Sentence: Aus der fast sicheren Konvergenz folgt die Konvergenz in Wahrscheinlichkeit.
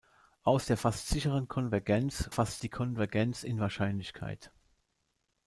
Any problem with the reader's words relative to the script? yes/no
yes